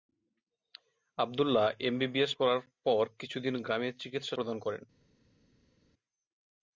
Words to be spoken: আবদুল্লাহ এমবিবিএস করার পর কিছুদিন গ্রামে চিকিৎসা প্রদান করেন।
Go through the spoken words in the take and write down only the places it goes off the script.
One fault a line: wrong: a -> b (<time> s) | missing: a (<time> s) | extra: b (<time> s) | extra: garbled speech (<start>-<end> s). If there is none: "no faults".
no faults